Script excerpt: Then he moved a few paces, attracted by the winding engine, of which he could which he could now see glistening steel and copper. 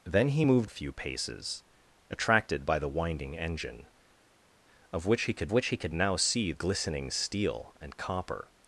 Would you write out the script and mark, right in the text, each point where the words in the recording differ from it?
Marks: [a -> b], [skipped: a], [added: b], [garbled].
Then he moved a few paces, attracted by the winding engine, of which he could which he could now see glistening steel and copper.